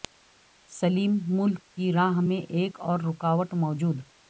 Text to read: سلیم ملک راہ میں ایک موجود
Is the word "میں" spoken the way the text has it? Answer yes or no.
yes